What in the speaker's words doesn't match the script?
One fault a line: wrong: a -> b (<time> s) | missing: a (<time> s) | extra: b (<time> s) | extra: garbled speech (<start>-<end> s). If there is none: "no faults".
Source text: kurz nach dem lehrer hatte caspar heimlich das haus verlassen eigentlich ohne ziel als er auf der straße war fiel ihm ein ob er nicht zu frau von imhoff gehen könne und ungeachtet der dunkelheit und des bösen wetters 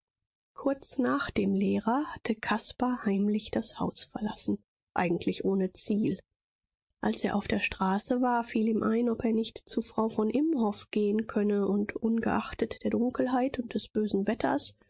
no faults